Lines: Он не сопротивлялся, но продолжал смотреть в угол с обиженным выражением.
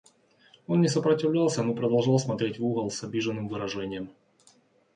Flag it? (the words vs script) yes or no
no